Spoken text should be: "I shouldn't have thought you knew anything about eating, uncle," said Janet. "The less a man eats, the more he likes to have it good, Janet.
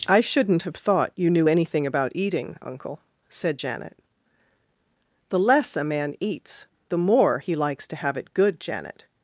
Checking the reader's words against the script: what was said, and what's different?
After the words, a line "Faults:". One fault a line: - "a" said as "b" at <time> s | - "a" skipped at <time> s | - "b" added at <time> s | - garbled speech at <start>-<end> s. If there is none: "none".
"I shouldn't have thought you knew anything about eating, uncle," said Janet. "The less a man eats, the more he likes to have it good, Janet.
Faults:
none